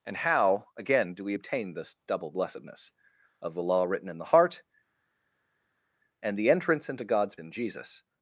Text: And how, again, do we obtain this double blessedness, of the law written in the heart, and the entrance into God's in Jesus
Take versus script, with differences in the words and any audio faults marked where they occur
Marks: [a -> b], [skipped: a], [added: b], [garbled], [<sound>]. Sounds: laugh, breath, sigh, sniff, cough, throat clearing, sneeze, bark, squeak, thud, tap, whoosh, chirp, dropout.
And how, again, do we obtain this double blessedness, of the law written in the heart, and the entrance into God's in Jesus